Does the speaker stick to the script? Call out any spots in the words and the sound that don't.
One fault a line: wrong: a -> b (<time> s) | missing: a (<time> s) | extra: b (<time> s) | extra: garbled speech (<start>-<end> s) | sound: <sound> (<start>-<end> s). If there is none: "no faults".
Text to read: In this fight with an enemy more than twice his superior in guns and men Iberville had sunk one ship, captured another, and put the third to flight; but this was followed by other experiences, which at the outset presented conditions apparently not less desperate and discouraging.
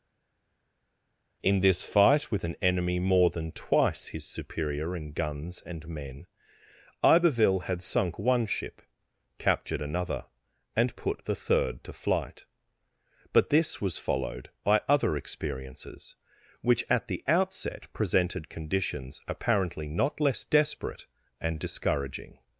no faults